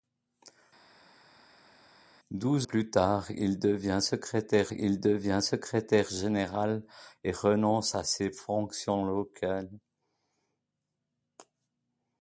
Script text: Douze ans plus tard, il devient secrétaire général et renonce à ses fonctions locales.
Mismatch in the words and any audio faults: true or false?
true